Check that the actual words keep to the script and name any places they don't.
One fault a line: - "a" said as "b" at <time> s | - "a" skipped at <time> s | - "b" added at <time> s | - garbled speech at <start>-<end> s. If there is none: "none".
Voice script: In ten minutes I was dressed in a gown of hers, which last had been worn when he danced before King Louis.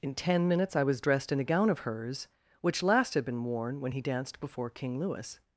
none